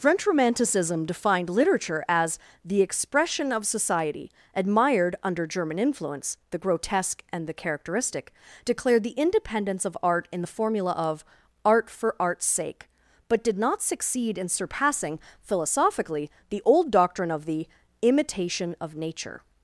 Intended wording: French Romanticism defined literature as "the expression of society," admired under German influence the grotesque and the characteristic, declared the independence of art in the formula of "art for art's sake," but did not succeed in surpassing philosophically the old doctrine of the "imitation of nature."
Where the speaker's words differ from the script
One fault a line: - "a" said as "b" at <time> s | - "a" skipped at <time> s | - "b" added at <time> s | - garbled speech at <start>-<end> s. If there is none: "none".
none